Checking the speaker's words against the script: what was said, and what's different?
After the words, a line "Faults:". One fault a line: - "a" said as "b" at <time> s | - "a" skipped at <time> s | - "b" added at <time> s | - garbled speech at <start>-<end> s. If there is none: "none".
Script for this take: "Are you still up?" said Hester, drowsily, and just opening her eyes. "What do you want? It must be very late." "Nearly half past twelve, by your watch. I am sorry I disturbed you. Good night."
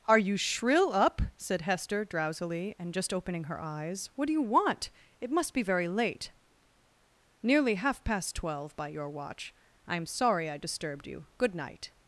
"Are you shrill up?" said Hester, drowsily, and just opening her eyes. "What do you want? It must be very late." "Nearly half past twelve, by your watch. I am sorry I disturbed you. Good night."
Faults:
- "still" said as "shrill" at 0.3 s